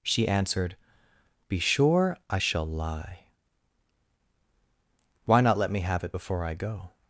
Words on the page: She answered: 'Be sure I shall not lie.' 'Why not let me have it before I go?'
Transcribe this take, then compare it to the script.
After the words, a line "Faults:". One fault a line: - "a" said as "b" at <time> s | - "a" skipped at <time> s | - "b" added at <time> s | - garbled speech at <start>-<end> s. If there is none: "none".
She answered: 'Be sure I shall lie.' 'Why not let me have it before I go?'
Faults:
- "not" skipped at 2.7 s